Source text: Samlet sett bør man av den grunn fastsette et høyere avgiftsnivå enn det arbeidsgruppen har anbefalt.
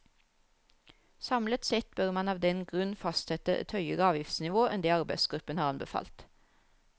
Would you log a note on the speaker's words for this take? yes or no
no